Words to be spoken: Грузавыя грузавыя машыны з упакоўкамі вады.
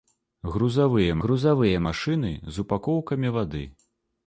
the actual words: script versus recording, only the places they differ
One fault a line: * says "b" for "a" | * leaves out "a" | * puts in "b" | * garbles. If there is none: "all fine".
all fine